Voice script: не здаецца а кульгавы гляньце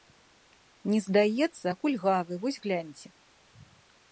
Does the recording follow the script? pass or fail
fail